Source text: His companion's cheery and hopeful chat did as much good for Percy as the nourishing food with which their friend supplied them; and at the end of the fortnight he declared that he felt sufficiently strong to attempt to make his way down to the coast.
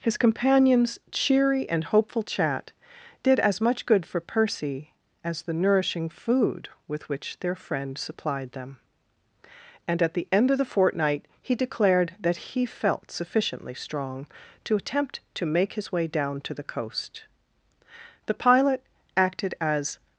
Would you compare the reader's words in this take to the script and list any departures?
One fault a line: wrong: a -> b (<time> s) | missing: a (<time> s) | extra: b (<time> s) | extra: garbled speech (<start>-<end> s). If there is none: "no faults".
extra: The pilot acted as (18.3 s)